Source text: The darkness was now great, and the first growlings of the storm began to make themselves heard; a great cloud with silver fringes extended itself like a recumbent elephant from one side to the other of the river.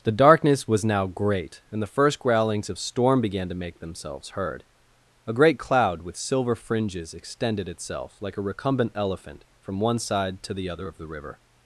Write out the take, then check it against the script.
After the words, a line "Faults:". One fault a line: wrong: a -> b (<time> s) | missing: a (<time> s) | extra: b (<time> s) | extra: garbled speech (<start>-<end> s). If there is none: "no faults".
The darkness was now great, and the first growlings of storm began to make themselves heard; a great cloud with silver fringes extended itself like a recumbent elephant from one side to the other of the river.
Faults:
missing: the (2.8 s)